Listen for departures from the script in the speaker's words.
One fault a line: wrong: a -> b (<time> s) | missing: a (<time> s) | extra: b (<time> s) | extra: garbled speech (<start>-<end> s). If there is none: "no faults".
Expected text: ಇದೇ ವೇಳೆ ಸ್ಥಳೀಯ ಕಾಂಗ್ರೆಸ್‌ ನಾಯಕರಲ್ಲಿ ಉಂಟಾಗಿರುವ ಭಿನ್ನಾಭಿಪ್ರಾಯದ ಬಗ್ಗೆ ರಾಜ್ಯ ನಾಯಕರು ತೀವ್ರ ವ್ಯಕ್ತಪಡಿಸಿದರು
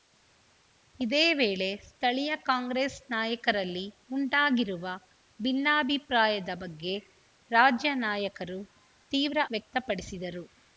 no faults